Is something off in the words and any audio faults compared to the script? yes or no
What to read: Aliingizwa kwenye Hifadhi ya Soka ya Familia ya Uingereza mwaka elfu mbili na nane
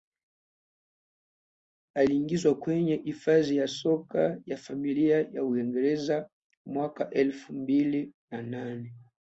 no